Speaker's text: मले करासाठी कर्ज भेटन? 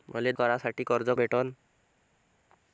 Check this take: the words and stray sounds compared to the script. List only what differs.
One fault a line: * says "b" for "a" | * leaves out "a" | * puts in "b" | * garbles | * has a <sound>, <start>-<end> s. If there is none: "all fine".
all fine